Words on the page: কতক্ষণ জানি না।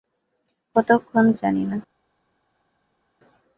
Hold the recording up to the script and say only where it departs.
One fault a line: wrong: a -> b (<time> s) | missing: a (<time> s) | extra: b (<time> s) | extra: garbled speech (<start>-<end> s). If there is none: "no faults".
no faults